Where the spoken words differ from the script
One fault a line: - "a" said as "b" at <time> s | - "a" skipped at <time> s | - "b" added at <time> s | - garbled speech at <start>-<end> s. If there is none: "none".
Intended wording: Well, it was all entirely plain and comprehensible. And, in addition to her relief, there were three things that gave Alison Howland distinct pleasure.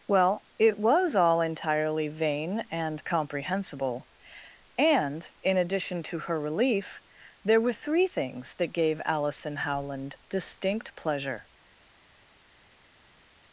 - "plain" said as "vain" at 2.1 s